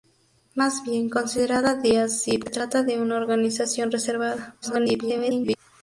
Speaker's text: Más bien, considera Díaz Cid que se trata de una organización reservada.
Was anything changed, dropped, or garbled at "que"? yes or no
yes